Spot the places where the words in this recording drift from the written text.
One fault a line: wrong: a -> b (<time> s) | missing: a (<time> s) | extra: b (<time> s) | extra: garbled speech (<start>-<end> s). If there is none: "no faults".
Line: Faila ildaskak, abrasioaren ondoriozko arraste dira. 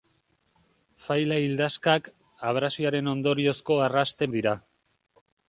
no faults